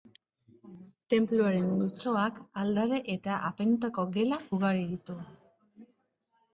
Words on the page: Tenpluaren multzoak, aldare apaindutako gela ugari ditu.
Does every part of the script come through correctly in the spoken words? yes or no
no